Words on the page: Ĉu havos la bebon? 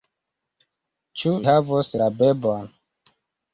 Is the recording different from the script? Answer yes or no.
no